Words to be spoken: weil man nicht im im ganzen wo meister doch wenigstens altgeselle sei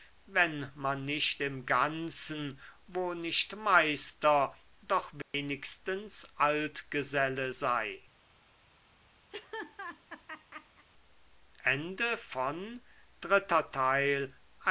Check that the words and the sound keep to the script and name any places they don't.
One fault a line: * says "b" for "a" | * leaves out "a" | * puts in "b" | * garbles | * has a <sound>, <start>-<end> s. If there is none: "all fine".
* says "wenn" for "weil"
* leaves out "im"
* puts in "nicht"
* has a dropout, 5.2-5.3 s
* has a laugh, 9.3-10.9 s